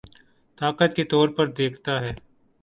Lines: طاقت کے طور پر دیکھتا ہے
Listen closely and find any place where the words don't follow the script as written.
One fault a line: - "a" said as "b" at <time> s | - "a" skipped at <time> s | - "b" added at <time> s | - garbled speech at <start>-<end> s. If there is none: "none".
none